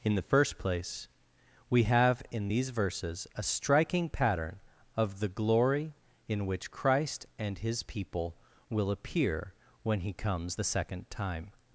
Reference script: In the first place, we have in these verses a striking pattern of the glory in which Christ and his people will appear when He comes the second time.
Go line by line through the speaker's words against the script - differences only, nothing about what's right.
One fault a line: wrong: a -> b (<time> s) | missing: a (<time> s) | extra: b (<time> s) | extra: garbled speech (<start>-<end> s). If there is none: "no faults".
no faults